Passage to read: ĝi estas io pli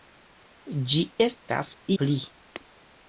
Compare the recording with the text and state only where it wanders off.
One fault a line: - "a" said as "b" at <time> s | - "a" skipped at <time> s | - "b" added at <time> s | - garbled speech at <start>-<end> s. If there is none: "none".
- "io" skipped at 1.8 s